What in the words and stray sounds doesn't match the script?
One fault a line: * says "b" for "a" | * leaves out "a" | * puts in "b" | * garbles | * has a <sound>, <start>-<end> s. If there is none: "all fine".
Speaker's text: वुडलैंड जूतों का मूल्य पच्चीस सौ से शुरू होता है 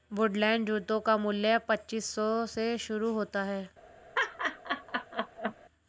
* has a laugh, 4.1-5.5 s